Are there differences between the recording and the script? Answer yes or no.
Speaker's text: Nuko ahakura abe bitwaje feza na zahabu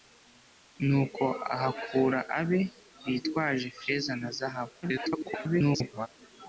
yes